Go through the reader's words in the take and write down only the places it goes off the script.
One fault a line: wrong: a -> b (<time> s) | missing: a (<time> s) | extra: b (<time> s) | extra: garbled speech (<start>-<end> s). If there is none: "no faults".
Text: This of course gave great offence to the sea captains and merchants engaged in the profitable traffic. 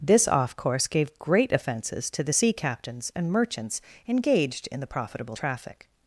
wrong: of -> off (0.3 s)
wrong: offence -> offences (1.5 s)